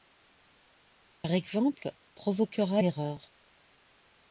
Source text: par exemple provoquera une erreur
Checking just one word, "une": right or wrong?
wrong